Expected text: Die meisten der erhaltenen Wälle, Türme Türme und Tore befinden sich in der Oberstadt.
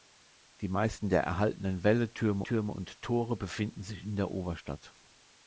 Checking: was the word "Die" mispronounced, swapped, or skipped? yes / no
no